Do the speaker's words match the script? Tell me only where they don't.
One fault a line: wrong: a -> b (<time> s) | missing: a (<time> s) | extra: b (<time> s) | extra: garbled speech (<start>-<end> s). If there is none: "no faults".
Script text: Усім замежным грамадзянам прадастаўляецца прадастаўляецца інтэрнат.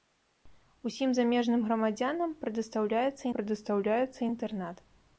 no faults